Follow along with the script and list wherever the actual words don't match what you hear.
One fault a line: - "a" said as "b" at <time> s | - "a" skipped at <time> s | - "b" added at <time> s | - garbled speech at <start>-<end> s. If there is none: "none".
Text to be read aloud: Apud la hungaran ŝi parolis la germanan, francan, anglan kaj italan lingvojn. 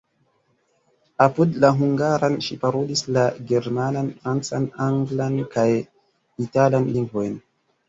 none